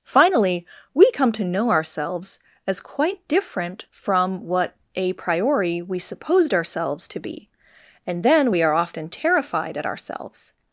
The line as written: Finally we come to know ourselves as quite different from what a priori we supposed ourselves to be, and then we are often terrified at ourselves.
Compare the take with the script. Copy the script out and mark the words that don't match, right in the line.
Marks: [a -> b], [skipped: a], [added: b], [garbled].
Finally we come to know ourselves as quite different from what a priori we supposed ourselves to be, and then we are often terrified at ourselves.